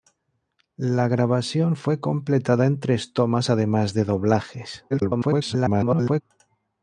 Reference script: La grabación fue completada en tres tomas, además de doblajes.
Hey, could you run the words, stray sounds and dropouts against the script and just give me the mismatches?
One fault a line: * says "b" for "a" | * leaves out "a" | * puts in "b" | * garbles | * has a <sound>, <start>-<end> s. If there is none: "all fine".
* garbles